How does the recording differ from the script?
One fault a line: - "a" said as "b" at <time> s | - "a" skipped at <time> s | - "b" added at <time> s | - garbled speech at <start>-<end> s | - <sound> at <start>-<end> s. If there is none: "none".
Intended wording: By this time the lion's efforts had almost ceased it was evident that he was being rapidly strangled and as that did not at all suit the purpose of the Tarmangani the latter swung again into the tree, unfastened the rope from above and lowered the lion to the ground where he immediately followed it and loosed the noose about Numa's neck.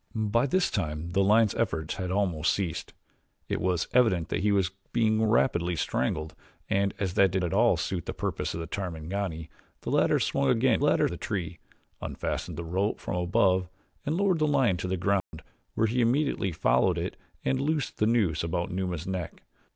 - "not" skipped at 7.4 s
- "into" said as "latter" at 10.8 s
- dropout at 15.2-15.3 s